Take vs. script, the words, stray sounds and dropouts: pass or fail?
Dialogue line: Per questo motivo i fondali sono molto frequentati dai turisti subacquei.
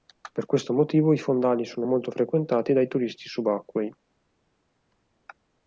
pass